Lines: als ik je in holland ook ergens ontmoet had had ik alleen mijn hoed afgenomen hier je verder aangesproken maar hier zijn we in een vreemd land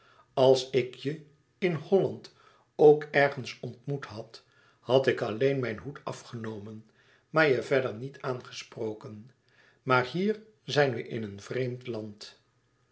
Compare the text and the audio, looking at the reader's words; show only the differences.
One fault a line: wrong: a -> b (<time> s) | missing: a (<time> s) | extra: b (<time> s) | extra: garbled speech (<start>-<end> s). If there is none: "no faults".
wrong: hier -> maar (7.3 s)
extra: niet (7.9 s)